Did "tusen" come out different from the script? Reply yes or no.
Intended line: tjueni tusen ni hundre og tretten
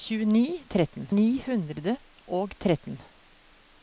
yes